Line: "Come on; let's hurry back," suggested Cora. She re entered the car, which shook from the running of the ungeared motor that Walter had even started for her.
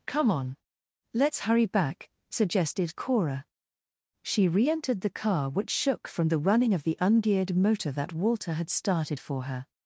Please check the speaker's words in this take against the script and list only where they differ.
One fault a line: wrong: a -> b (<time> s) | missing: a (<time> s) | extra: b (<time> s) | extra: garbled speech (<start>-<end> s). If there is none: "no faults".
missing: even (8.7 s)